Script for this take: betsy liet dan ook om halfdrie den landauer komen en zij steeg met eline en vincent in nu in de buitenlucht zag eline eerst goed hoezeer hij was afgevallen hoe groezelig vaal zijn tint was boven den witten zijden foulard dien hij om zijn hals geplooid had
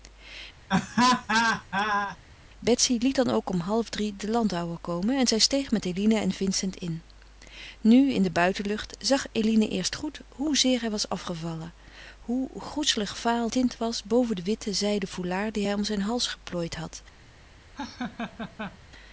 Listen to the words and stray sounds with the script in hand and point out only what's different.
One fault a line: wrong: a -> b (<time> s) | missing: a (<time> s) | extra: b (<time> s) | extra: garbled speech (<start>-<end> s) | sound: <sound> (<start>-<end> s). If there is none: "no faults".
sound: laugh (0.7-2.2 s)
missing: zijn (13.5 s)
sound: laugh (17.7-18.8 s)